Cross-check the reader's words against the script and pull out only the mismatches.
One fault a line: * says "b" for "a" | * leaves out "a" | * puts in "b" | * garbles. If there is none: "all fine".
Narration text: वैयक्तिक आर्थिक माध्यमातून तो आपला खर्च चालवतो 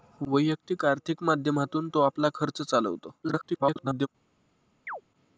* garbles